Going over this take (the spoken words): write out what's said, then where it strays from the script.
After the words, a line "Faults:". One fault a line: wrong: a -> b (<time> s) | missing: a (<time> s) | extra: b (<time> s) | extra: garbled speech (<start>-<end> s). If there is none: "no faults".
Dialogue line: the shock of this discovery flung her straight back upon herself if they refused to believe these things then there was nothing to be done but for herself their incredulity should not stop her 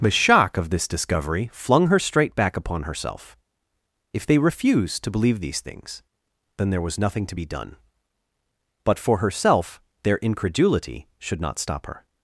the shock of this discovery flung her straight back upon herself if they refused to believe these things then there was nothing to be done but for herself their incredulity should not stop her
Faults:
no faults